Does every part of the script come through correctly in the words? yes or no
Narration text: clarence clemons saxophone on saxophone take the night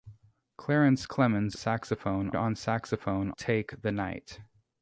yes